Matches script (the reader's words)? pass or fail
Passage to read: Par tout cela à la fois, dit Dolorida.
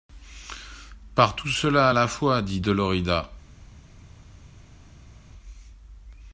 pass